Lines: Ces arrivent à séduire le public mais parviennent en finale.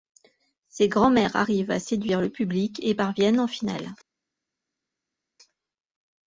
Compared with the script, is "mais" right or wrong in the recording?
wrong